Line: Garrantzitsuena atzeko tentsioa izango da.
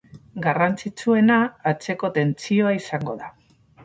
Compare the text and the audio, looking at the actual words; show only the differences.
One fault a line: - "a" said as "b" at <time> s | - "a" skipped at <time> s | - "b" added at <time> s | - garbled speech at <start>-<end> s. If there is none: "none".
none